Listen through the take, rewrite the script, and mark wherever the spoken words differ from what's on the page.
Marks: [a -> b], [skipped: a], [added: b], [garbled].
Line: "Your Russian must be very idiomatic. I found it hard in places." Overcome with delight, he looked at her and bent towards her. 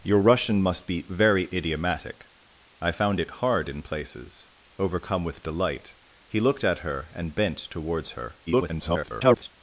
"Your Russian must be very idiomatic. I found it hard in places." Overcome with delight, he looked at her and bent towards her. [garbled]